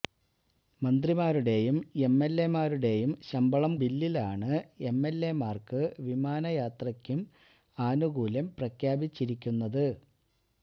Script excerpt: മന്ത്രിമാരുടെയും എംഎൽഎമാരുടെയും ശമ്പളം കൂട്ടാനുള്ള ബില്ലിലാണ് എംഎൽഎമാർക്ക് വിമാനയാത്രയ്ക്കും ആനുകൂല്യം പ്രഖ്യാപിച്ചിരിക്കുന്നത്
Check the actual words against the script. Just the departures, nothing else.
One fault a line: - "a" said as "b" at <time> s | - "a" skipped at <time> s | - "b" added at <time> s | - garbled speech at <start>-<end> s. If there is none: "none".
- "കൂട്ടാനുള്ള" skipped at 3.7 s